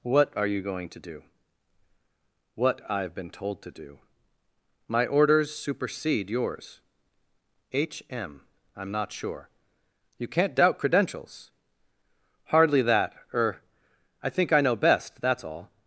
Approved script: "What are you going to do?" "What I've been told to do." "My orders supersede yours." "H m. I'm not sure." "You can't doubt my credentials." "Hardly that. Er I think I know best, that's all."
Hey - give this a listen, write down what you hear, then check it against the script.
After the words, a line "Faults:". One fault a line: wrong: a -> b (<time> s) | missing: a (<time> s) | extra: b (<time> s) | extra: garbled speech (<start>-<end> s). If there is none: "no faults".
"What are you going to do?" "What I've been told to do." "My orders supersede yours." "H m. I'm not sure." "You can't doubt credentials." "Hardly that. Er I think I know best, that's all."
Faults:
missing: my (10.8 s)